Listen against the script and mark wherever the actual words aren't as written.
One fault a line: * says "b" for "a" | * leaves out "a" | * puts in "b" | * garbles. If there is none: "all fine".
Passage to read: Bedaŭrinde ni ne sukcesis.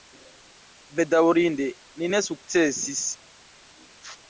all fine